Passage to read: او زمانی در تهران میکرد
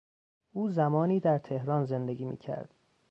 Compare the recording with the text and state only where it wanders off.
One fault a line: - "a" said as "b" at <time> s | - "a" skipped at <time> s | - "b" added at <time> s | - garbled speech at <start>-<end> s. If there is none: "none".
- "زندگی" added at 1.8 s